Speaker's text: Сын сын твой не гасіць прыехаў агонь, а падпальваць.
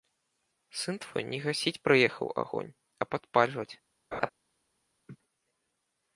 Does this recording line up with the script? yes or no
no